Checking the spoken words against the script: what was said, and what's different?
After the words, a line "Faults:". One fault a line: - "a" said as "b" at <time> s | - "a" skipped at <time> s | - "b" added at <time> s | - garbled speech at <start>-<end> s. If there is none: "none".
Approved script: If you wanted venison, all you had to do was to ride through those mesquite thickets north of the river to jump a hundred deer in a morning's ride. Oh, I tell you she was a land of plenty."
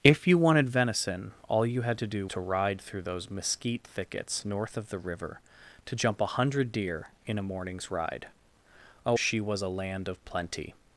If you wanted venison, all you had to do to ride through those mesquite thickets north of the river to jump a hundred deer in a morning's ride. Oh, she was a land of plenty."
Faults:
- "was" skipped at 2.3 s
- "I tell you" skipped at 9.2 s